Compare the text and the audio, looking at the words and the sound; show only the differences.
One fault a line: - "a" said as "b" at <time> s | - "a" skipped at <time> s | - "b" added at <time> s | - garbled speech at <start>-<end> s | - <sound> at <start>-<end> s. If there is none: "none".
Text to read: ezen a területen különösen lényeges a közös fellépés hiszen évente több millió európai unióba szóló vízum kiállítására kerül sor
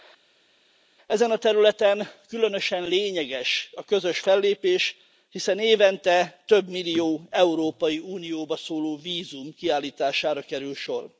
none